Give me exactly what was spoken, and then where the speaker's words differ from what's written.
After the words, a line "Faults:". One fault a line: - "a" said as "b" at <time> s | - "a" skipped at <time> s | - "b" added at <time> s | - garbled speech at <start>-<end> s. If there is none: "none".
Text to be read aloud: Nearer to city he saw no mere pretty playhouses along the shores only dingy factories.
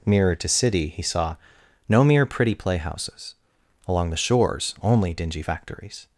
Nearer to city he saw no mere pretty playhouses along the shores only dingy factories.
Faults:
none